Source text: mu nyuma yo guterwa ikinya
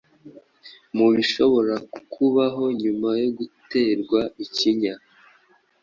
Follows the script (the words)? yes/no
no